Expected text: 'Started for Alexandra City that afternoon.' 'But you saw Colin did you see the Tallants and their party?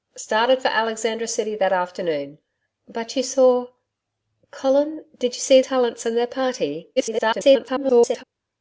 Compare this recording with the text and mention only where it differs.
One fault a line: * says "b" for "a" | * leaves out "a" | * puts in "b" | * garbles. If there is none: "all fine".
* leaves out "the"
* garbles